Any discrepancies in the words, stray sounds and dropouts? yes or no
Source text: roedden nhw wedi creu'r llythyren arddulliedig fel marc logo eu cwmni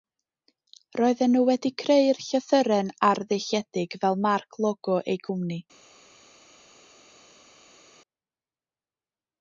no